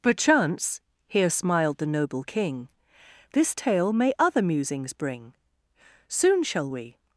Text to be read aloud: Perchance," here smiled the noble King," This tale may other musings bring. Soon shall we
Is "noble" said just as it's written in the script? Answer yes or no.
yes